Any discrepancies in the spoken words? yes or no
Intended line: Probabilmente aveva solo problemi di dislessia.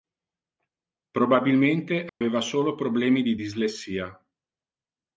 no